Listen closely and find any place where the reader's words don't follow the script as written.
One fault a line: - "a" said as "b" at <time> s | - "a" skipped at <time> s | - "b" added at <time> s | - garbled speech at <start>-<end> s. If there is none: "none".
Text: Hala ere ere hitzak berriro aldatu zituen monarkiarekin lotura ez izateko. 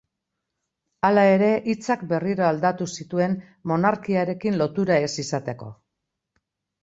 - "ere" skipped at 1.5 s